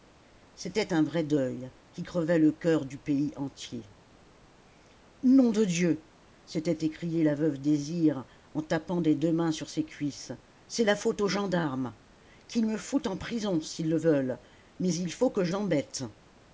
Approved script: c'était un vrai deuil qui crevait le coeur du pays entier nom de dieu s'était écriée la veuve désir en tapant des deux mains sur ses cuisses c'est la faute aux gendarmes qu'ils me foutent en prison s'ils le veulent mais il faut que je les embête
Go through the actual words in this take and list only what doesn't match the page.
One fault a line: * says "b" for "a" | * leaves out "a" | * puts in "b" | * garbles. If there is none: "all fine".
* leaves out "les"